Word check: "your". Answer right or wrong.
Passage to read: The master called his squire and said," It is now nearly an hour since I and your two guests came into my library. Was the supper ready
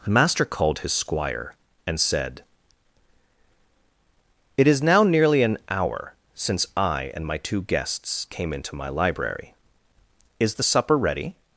wrong